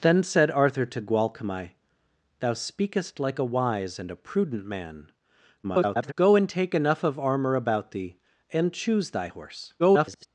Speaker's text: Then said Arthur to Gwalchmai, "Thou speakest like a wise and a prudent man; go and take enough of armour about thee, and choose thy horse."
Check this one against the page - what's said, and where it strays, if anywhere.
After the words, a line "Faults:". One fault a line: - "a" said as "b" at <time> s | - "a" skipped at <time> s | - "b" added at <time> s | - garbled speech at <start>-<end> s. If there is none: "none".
Then said Arthur to Gwalchmai, "Thou speakest like a wise and a prudent man; [garbled] go and take enough of armour about thee, and choose thy horse." [garbled]
Faults:
- garbled speech at 5.6-6.1 s
- garbled speech at 9.8-10.3 s